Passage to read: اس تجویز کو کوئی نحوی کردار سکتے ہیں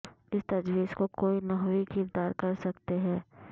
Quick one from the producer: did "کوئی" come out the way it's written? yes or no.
yes